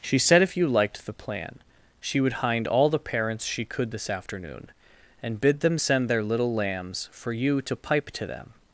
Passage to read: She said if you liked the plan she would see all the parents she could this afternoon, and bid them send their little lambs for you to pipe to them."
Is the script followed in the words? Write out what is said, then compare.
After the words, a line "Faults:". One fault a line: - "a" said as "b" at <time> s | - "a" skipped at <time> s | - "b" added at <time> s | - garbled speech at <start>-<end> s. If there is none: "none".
She said if you liked the plan she would hind all the parents she could this afternoon, and bid them send their little lambs for you to pipe to them."
Faults:
- "see" said as "hind" at 2.4 s